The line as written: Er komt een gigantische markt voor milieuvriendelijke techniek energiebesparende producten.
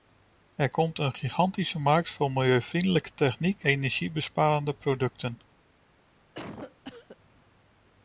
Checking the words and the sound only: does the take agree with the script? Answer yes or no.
no